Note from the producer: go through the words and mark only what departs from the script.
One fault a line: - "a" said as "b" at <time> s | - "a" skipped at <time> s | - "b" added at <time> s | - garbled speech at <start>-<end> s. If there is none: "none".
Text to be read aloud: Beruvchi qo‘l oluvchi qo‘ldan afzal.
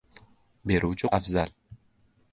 - "qo‘l oluvchi qo‘ldan" skipped at 1.1 s